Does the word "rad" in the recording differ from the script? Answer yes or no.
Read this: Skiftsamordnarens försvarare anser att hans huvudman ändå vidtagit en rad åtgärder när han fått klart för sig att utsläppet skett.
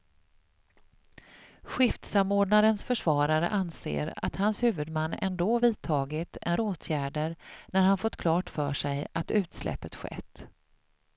yes